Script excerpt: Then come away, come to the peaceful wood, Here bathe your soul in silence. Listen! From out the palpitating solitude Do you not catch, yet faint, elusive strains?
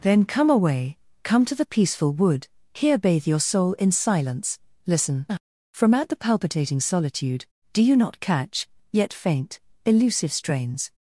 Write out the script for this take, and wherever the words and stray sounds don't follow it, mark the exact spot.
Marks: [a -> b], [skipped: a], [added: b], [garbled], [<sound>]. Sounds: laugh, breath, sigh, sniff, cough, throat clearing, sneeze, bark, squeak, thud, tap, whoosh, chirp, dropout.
Then come away, come to the peaceful wood, Here bathe your soul in silence. Listen! From out the palpitating solitude Do you not catch, yet faint, elusive strains?